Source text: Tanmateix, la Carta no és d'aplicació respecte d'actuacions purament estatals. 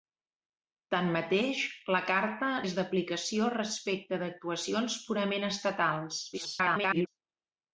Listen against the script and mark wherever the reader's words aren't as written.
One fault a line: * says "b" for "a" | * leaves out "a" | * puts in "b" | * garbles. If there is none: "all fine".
* leaves out "no"
* garbles